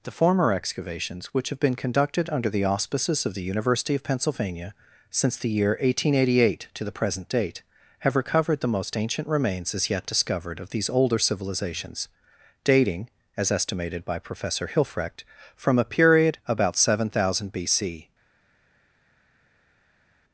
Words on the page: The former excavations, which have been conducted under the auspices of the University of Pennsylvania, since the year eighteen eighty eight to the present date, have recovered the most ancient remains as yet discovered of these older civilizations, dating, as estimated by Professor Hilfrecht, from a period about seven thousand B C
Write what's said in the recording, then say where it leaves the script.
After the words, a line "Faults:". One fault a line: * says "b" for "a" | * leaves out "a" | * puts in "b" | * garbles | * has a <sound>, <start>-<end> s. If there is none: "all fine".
The former excavations, which have been conducted under the auspices of the University of Pennsylvania, since the year eighteen eighty eight to the present date, have recovered the most ancient remains as yet discovered of these older civilizations, dating, as estimated by Professor Hilfrecht, from a period about seven thousand B C
Faults:
all fine